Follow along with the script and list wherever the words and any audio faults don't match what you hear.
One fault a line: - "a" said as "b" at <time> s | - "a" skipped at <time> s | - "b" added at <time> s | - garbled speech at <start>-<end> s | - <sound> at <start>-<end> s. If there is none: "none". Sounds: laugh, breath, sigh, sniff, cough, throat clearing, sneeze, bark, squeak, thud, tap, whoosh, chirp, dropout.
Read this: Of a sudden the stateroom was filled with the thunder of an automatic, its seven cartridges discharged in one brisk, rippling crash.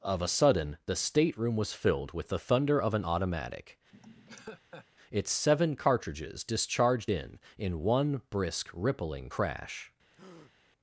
- laugh at 3.9-4.9 s
- "in" added at 7.6 s
- breath at 10.1-10.5 s